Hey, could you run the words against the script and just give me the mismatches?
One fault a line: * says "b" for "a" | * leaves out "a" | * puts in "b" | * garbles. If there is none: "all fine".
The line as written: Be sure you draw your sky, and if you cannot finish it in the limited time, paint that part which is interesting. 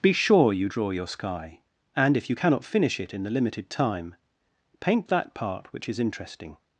all fine